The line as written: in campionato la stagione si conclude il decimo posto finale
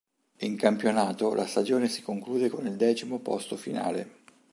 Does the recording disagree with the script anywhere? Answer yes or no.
yes